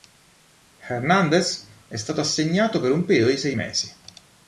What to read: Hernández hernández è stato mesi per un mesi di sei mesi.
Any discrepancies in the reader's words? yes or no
yes